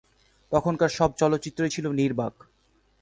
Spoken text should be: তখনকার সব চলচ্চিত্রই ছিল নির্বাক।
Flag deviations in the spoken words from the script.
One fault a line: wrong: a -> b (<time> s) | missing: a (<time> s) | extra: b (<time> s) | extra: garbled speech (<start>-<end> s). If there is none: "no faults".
no faults